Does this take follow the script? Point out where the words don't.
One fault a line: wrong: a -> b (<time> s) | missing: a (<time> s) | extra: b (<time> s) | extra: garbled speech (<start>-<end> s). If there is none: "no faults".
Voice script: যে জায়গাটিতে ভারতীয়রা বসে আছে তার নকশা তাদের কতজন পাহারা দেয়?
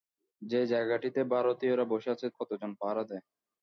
missing: তার নকশা তাদের (2.3 s)